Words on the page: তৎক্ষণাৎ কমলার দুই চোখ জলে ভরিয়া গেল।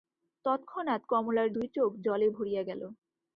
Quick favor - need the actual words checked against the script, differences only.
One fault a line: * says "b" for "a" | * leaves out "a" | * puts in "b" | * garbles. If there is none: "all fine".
all fine